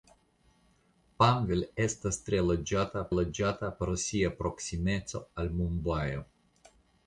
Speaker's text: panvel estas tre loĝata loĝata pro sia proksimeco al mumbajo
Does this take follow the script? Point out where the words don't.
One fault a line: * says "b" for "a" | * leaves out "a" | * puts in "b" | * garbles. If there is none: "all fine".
all fine